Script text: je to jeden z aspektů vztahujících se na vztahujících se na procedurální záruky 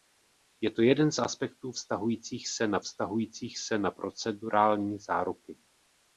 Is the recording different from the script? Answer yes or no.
no